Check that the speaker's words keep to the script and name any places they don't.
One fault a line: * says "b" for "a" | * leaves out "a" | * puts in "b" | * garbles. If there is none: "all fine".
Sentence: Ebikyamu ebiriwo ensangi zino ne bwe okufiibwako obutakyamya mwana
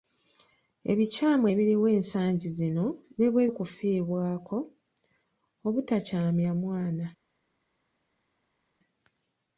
all fine